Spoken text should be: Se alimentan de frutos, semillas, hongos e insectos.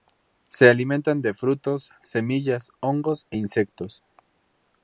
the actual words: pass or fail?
pass